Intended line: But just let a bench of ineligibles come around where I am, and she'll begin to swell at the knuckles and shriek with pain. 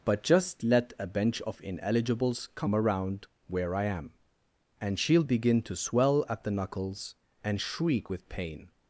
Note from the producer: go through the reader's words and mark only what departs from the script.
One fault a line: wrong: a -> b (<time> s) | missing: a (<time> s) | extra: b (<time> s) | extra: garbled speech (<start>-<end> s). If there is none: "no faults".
no faults